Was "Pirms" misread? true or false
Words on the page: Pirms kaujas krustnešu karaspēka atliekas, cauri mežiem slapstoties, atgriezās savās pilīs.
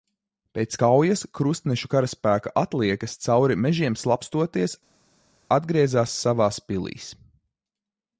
true